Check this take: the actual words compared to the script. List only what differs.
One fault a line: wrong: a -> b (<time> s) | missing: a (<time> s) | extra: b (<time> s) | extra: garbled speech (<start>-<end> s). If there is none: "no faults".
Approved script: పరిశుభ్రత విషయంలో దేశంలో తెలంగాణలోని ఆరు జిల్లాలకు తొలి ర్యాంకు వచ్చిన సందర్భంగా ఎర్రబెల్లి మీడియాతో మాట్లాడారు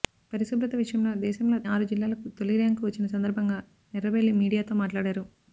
missing: తెలంగాణలోని (1.6 s)